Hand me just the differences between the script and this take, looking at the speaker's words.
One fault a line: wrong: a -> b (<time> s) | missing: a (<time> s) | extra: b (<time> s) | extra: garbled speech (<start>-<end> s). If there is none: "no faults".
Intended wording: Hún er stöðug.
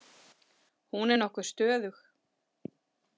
extra: nokkuð (1.2 s)